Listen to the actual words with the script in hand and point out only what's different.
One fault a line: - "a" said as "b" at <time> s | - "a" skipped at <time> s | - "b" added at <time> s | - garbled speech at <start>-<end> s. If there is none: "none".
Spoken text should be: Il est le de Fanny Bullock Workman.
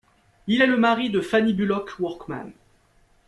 - "mari" added at 0.8 s